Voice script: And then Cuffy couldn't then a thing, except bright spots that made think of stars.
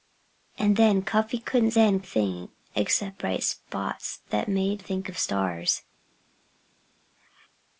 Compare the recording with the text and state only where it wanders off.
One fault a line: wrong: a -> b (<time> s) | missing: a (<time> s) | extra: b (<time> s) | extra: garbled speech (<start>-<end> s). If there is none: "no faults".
no faults